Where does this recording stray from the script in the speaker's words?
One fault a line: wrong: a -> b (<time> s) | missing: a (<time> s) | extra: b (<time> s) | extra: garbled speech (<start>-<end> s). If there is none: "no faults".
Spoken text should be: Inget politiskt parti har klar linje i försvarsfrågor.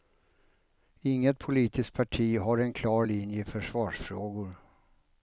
extra: en (2.6 s)